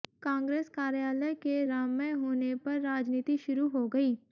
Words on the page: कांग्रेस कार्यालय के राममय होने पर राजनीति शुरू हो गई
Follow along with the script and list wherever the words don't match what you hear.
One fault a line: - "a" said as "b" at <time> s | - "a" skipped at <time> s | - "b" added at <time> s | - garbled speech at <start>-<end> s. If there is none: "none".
none